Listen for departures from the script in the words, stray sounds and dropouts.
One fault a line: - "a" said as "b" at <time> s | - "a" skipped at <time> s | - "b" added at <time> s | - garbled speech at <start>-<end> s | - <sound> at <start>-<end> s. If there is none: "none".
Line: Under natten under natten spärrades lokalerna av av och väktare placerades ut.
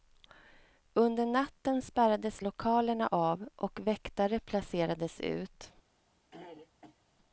- "under natten" skipped at 1.8 s
- "av" skipped at 3.5 s
- throat clearing at 6.3-7.0 s